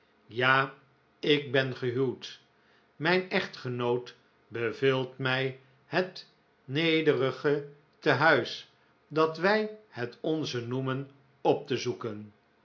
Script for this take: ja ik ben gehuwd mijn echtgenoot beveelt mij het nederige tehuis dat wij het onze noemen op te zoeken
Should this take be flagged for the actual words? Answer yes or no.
no